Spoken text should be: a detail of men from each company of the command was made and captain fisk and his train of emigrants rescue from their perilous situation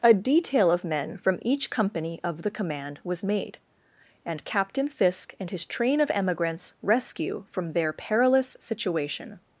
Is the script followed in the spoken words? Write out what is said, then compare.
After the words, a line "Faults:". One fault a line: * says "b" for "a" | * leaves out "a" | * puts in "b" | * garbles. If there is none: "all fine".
a detail of men from each company of the command was made and captain fisk and his train of emigrants rescue from their perilous situation
Faults:
all fine